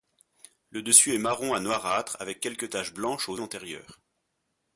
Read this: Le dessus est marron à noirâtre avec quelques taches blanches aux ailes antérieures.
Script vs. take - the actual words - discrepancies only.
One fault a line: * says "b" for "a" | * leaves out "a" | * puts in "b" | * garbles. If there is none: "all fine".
* leaves out "ailes"